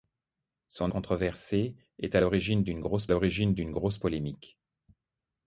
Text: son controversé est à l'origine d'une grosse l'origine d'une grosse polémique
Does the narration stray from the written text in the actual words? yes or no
no